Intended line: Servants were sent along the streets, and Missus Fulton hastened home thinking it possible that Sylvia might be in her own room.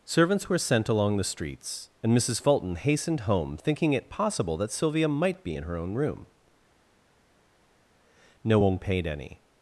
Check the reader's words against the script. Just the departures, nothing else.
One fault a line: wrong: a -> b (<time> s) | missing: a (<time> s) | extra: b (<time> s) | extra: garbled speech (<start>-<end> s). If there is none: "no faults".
extra: No one paid any (8.4 s)